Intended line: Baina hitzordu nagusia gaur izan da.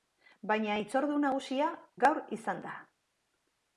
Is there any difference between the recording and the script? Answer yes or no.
no